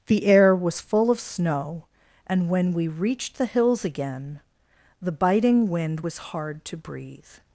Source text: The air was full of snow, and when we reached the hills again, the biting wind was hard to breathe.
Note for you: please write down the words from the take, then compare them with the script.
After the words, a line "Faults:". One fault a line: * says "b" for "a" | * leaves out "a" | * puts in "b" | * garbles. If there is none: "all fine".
The air was full of snow, and when we reached the hills again, the biting wind was hard to breathe.
Faults:
all fine